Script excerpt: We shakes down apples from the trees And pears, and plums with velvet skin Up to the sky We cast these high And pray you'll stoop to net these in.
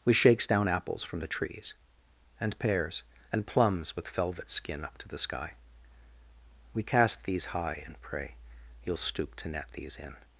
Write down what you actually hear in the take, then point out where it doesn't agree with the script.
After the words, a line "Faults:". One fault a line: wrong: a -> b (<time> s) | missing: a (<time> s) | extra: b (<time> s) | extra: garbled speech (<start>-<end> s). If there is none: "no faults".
We shakes down apples from the trees And pears, and plums with velvet skin Up to the sky We cast these high And pray you'll stoop to net these in.
Faults:
no faults